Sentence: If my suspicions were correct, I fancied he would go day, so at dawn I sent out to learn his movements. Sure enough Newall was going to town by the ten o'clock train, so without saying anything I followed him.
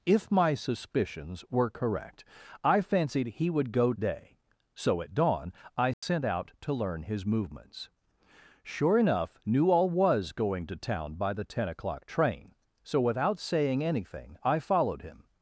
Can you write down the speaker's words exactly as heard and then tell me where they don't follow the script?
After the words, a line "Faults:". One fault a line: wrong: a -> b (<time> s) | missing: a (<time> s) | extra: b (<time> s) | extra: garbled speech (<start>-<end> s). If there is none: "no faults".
If my suspicions were correct, I fancied he would go day, so at dawn I sent out to learn his movements. Sure enough Newall was going to town by the ten o'clock train, so without saying anything I followed him.
Faults:
no faults